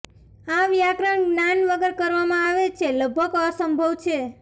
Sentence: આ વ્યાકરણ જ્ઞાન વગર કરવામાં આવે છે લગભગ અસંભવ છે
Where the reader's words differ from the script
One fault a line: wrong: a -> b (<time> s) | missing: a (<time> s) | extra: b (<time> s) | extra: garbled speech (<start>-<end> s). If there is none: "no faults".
no faults